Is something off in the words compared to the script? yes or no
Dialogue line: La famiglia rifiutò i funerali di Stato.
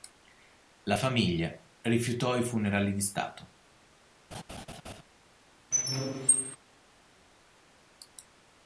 no